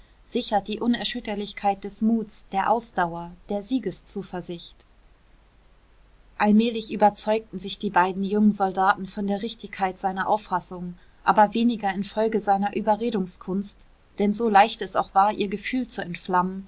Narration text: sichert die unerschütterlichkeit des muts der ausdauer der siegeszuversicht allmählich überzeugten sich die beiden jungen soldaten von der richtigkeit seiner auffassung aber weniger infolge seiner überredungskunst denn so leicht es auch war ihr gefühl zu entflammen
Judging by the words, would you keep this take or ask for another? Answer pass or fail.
pass